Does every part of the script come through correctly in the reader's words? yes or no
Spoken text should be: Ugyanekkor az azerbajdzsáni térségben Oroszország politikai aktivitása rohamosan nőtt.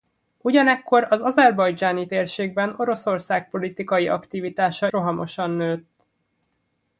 yes